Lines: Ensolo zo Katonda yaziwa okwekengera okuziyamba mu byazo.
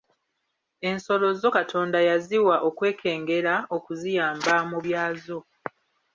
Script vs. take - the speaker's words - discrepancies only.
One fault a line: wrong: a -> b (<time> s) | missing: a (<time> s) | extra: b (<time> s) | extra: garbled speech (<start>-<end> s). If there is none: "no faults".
no faults